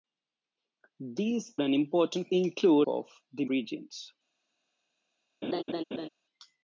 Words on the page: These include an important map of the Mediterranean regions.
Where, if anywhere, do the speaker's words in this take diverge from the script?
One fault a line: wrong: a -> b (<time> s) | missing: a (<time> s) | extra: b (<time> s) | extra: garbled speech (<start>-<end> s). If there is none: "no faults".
missing: include (1.6 s)
wrong: map -> include (2.3 s)
missing: Mediterranean (3.5 s)